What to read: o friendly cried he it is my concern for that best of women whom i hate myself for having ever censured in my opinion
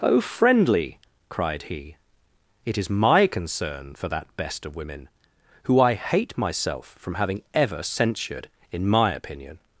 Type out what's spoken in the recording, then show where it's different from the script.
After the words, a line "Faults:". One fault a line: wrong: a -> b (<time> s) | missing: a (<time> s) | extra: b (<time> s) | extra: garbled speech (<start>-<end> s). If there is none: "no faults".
o friendly cried he it is my concern for that best of women who i hate myself from having ever censured in my opinion
Faults:
wrong: whom -> who (5.6 s)
wrong: for -> from (7.0 s)